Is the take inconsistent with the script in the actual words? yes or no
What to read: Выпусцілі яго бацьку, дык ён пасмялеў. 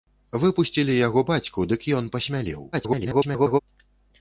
yes